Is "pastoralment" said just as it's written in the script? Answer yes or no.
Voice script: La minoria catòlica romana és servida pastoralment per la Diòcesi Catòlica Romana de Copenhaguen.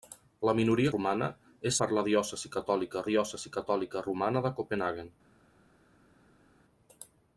no